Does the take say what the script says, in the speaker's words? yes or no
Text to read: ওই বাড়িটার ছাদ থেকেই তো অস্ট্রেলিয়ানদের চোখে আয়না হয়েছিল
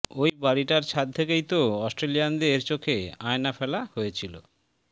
no